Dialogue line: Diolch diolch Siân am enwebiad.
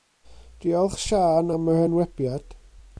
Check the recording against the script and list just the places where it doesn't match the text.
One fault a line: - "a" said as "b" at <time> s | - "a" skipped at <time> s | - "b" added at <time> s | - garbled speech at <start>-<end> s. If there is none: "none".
- "diolch" skipped at 1.0 s
- "yr" added at 1.7 s